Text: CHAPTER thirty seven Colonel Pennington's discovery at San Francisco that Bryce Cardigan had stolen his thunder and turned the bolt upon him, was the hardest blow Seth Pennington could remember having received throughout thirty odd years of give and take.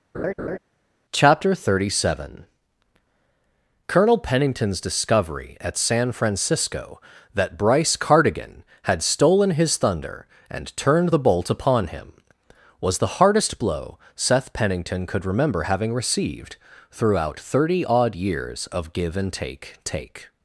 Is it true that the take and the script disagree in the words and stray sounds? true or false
true